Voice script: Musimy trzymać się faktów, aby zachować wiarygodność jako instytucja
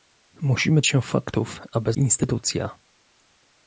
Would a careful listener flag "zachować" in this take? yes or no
yes